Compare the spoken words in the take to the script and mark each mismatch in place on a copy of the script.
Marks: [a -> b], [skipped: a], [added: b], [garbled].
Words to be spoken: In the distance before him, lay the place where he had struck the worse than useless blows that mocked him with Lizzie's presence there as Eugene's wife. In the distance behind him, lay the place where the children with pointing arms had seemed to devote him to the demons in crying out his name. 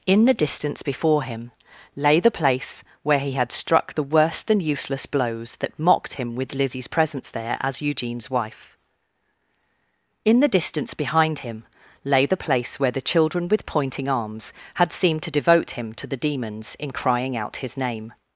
In the distance before him, lay the place where he had struck the worse than useless blows that mocked him with Lizzie's presence there as Eugene's wife. In the distance behind him, lay the place where the children with pointing arms had seemed to devote him to the demons in crying out his name.